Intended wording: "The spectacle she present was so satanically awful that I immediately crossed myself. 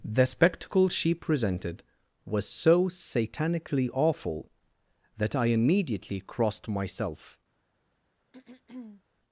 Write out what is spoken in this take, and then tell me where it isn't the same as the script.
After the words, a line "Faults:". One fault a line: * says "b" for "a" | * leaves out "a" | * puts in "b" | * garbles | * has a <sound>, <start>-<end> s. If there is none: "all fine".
"The spectacle she presented was so satanically awful that I immediately crossed myself.
Faults:
* says "presented" for "present"
* has a throat clearing, 8.3-9.0 s